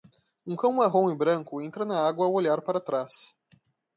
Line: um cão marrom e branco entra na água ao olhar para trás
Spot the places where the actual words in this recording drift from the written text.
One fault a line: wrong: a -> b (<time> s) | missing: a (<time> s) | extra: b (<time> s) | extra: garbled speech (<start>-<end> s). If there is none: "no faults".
no faults